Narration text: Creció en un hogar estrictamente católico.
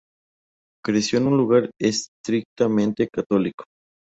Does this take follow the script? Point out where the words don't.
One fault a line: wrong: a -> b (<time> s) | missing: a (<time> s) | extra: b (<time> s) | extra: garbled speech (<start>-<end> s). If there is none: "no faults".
no faults